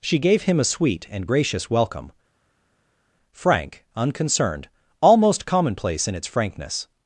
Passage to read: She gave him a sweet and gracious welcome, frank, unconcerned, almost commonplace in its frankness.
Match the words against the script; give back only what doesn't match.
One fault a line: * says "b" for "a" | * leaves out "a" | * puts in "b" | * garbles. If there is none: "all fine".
all fine